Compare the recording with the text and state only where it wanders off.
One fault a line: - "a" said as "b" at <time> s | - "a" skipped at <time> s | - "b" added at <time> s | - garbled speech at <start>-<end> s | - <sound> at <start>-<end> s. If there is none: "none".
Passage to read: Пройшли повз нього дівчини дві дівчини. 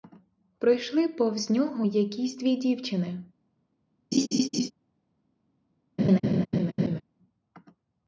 - "дівчини" said as "якісь" at 1.8 s
- laugh at 4.1-4.7 s
- laugh at 6.0-7.0 s